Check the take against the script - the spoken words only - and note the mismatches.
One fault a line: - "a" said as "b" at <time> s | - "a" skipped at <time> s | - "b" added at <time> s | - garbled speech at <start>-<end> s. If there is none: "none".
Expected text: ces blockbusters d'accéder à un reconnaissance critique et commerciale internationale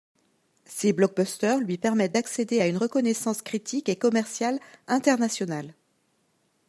- "lui permettent" added at 1.6 s
- "un" said as "une" at 2.7 s